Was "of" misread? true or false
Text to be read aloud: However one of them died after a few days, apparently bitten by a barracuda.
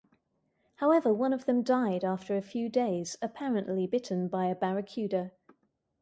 false